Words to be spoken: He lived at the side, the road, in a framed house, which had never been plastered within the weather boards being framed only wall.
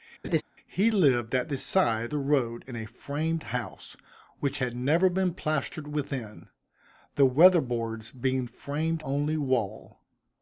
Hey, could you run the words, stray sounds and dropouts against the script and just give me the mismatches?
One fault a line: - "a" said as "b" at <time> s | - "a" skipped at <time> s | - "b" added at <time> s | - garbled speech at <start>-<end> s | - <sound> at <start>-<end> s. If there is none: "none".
- laugh at 0.2-0.4 s